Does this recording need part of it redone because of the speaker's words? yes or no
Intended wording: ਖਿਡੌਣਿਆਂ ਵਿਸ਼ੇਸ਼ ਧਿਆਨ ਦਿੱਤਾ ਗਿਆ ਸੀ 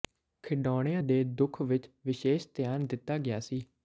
yes